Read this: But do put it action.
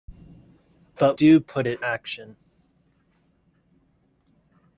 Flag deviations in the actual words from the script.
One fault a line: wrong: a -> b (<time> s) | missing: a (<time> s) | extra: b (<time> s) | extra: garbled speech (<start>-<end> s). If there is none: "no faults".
no faults